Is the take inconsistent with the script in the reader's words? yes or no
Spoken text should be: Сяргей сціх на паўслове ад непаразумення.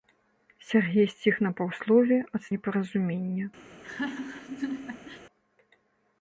no